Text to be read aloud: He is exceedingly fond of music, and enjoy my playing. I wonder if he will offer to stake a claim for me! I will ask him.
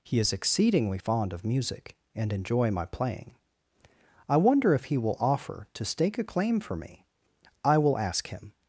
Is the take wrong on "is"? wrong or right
right